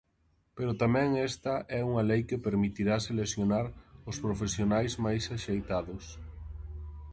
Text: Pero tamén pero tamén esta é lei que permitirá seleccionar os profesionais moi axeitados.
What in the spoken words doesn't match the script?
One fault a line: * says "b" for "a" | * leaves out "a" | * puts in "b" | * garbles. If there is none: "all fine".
* leaves out "pero tamén"
* puts in "unha"
* says "máis" for "moi"